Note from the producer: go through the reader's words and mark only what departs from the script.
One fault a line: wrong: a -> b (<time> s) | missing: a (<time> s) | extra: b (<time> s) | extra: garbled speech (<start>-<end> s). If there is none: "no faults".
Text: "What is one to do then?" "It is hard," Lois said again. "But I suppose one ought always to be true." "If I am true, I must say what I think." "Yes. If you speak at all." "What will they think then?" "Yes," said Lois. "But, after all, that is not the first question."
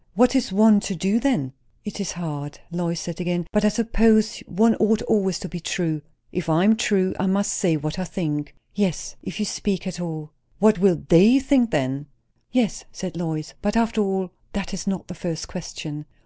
no faults